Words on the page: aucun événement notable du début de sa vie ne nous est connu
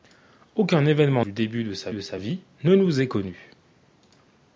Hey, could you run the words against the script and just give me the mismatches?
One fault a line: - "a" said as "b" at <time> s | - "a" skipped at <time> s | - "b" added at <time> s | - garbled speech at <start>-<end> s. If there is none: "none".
- "notable" skipped at 1.2 s
- "de sa" added at 1.9 s